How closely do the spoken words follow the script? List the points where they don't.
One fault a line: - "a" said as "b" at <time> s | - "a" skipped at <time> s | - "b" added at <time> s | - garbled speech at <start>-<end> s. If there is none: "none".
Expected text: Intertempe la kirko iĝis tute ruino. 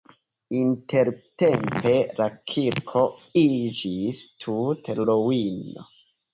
none